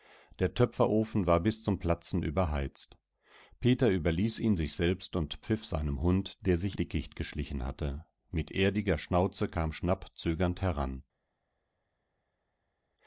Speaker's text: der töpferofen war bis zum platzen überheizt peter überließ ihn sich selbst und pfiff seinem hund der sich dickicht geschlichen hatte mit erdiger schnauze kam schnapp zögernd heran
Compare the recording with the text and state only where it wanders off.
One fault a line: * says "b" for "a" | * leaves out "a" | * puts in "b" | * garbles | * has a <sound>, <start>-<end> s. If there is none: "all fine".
all fine